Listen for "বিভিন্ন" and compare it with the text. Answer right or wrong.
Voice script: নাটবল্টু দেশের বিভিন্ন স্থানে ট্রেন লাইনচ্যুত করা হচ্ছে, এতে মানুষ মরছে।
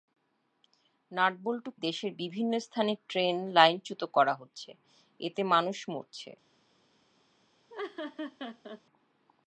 right